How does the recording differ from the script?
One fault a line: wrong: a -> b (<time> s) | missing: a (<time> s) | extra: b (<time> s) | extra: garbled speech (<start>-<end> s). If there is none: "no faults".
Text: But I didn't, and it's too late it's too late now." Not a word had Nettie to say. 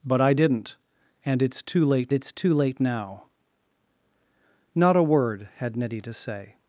no faults